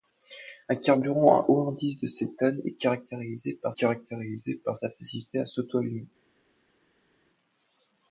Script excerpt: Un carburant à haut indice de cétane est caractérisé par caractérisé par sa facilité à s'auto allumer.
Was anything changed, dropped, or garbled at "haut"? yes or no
no